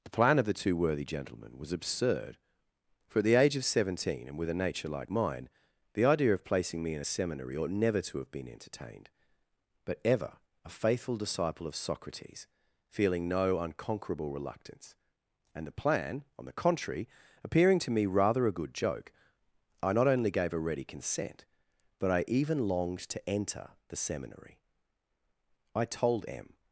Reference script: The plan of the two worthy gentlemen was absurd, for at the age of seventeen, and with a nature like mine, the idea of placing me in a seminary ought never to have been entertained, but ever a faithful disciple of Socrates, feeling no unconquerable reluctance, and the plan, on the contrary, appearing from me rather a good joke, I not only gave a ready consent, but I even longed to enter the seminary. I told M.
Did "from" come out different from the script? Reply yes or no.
yes